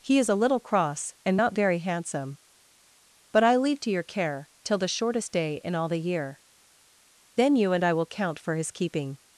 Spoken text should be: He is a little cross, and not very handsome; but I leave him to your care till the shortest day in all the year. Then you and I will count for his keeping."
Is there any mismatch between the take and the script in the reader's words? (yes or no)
yes